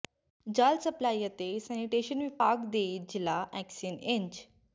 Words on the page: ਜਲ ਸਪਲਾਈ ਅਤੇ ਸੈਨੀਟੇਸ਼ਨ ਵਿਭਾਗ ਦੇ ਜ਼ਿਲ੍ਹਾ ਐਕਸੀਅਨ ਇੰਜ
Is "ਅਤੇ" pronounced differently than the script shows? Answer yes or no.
no